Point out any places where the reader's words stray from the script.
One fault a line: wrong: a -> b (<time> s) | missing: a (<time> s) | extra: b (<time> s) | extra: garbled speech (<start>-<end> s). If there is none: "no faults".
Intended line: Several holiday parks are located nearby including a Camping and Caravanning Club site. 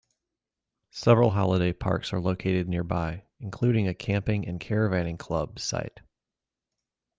no faults